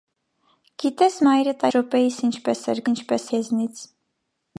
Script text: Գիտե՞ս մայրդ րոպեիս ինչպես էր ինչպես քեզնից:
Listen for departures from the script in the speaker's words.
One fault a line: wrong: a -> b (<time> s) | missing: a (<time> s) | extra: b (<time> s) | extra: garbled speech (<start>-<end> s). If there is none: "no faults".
no faults